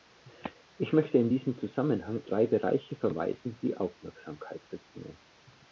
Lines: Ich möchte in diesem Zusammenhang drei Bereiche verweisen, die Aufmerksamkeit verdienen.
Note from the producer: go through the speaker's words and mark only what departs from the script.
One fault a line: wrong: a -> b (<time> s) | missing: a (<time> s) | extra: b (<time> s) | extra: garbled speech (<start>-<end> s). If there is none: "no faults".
no faults